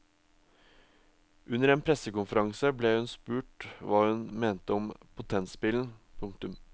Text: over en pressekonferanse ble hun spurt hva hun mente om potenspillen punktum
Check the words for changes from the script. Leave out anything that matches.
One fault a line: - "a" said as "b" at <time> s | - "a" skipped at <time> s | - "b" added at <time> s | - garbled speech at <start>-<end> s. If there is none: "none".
- "over" said as "under" at 1.5 s